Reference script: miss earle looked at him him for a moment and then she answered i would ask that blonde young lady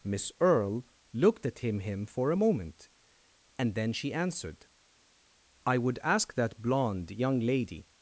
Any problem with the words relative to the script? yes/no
no